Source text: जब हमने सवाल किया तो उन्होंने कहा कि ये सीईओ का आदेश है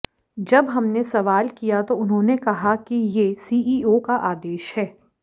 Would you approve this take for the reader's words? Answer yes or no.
yes